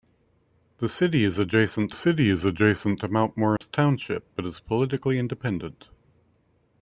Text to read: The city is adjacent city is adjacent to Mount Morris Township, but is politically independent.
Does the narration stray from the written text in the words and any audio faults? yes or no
yes